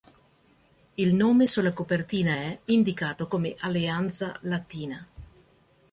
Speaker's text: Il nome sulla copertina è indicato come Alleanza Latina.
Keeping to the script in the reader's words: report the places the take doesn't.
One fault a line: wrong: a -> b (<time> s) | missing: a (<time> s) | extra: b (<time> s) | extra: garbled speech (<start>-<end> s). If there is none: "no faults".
no faults